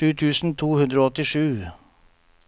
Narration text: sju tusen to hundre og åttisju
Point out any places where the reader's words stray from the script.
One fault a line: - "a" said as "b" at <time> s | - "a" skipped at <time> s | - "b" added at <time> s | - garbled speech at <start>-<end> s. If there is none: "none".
none